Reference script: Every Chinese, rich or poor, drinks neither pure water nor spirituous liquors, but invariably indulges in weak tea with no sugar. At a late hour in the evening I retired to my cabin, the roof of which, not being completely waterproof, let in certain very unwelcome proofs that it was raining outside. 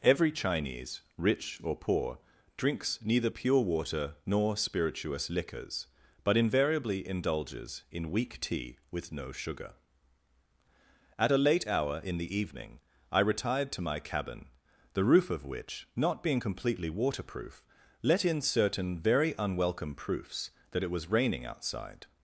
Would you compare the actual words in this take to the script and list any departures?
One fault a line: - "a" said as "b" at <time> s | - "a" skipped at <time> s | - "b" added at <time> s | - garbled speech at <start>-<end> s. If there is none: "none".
none